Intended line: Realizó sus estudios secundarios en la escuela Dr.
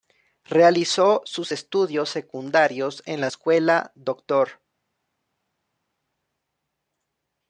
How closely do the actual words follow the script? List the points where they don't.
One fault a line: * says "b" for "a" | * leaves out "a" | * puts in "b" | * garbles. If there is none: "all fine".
all fine